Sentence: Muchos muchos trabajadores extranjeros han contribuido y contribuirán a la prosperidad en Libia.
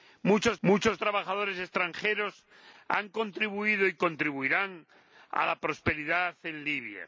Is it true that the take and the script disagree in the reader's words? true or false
false